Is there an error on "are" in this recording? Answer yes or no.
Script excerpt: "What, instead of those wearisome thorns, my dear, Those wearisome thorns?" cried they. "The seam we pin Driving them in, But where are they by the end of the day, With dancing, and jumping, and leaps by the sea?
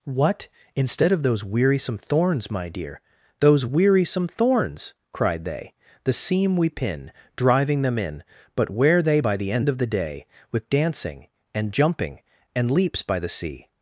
yes